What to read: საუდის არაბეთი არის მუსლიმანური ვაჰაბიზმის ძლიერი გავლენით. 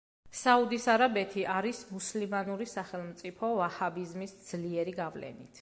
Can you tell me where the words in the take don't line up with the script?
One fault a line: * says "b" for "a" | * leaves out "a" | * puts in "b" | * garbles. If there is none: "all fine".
* puts in "სახელმწიფო"